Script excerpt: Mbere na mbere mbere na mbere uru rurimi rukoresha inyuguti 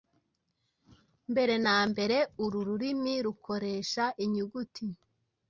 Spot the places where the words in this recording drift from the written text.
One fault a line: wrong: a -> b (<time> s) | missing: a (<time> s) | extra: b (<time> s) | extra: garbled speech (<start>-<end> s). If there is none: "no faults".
missing: mbere na mbere (2.2 s)